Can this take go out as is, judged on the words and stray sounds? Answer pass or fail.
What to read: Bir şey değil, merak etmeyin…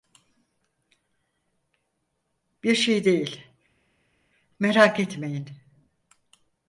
pass